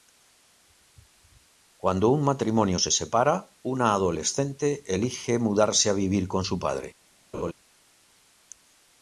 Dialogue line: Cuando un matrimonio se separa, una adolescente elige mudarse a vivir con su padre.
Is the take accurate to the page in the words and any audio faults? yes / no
no